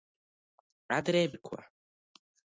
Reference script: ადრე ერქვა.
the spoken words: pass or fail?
pass